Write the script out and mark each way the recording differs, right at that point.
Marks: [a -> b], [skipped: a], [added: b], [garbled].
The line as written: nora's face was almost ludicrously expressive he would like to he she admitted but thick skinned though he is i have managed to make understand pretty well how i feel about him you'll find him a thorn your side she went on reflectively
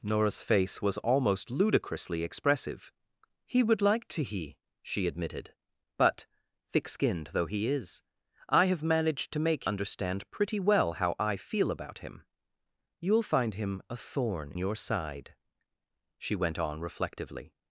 nora's face was almost ludicrously expressive he would like to he she admitted but thick skinned though he is i have managed to make understand pretty well how i feel about him you'll find him a thorn your side she went on reflectively